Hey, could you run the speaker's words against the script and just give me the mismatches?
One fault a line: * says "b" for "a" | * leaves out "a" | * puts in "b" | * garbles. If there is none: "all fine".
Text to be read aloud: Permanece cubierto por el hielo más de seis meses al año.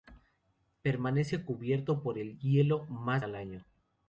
* leaves out "de seis meses"